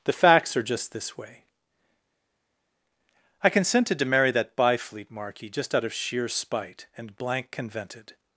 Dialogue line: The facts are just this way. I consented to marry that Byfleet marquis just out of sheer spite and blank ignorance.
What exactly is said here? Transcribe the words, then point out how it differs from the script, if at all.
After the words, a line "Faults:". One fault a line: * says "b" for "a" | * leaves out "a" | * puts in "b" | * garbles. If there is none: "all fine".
The facts are just this way. I consented to marry that Byfleet marquis just out of sheer spite and blank convented.
Faults:
* says "convented" for "ignorance"